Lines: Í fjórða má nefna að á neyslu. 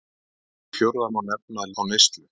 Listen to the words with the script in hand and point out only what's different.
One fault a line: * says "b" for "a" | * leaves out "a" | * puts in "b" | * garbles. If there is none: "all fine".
all fine